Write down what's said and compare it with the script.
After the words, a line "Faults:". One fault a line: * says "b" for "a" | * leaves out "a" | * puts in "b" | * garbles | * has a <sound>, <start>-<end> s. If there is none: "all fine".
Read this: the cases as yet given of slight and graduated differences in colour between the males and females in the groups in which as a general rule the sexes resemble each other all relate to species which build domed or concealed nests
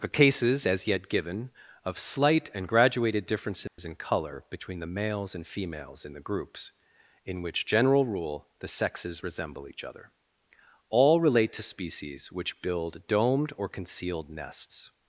the cases as yet given of slight and graduated differences in colour between the males and females in the groups in which general rule the sexes resemble each other all relate to species which build domed or concealed nests
Faults:
* has a dropout, 3.7-3.8 s
* leaves out "as a"